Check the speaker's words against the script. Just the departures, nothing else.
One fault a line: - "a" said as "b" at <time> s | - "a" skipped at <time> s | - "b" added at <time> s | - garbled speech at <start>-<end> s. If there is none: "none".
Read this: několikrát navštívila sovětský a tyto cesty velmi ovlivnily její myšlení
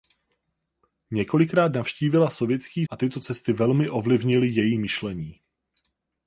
none